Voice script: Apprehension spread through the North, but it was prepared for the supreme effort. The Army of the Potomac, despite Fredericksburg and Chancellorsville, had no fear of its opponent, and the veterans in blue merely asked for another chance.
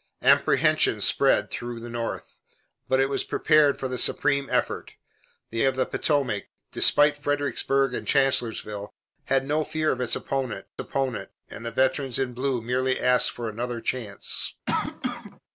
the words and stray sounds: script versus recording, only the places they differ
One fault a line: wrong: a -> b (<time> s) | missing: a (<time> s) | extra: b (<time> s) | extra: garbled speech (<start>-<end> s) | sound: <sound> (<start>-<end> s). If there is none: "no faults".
missing: Army (5.6 s)
extra: opponent (10.8 s)
sound: cough (14.7-15.4 s)